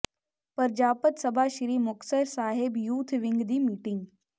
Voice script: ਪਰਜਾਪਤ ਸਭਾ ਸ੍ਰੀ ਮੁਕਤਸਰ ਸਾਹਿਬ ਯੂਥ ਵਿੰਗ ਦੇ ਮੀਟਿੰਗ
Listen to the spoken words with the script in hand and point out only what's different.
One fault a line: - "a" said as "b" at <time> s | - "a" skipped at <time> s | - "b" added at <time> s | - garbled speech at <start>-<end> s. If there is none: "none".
- "ਦੇ" said as "ਦੀ" at 3.4 s